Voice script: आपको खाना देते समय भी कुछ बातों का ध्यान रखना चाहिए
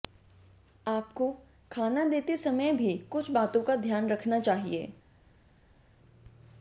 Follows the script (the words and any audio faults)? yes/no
yes